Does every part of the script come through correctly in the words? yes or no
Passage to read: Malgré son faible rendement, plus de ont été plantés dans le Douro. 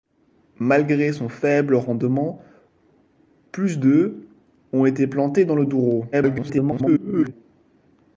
no